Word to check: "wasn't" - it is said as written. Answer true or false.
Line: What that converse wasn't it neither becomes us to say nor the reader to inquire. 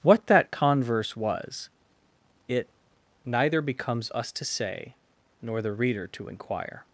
false